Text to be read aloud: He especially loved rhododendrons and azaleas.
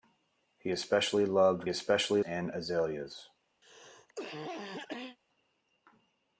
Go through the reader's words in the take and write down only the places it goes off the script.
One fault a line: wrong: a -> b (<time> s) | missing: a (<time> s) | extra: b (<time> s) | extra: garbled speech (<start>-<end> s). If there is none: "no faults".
wrong: rhododendrons -> especially (1.7 s)